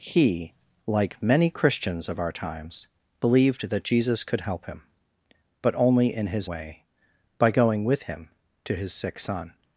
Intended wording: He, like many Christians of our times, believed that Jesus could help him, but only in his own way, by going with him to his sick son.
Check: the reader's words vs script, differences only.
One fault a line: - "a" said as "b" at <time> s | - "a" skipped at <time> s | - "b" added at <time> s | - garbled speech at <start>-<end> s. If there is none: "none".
- "own" skipped at 6.5 s